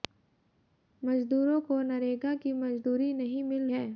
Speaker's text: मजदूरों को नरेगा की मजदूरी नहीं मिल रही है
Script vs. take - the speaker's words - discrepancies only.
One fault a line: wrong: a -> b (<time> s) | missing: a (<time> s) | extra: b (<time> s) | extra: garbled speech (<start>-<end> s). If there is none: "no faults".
missing: रही (3.7 s)